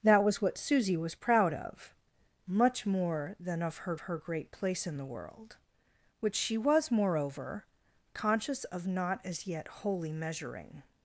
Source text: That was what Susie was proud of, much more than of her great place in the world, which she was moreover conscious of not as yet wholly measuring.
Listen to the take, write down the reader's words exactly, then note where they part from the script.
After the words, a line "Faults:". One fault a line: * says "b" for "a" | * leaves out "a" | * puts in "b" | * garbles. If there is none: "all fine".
That was what Susie was proud of, much more than of her her great place in the world, which she was moreover conscious of not as yet wholly measuring.
Faults:
* puts in "her"